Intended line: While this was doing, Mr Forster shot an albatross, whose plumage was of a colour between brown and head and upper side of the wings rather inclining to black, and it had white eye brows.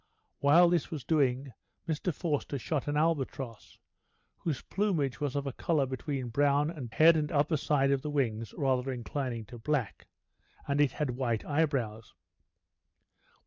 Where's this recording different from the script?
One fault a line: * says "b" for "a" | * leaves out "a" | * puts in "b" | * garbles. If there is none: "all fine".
all fine